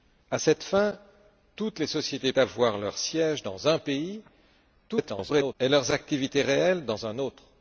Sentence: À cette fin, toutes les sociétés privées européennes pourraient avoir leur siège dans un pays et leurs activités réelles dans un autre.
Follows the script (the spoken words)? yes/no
no